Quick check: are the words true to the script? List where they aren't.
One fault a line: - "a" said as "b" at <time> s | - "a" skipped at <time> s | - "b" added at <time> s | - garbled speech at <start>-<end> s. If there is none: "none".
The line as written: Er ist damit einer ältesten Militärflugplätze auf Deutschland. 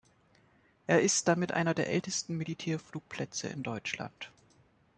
- "der" added at 1.8 s
- "auf" said as "in" at 3.5 s